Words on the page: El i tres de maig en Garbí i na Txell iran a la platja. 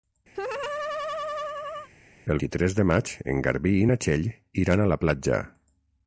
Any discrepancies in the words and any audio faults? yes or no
yes